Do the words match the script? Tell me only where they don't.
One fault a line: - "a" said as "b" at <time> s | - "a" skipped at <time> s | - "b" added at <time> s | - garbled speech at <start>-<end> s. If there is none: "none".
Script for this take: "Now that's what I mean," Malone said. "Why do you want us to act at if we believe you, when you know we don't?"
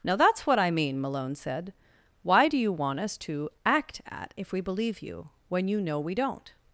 none